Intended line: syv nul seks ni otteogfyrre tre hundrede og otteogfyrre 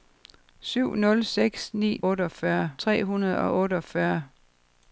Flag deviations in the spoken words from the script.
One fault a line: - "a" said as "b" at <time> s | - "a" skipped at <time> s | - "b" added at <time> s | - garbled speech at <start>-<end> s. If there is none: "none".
none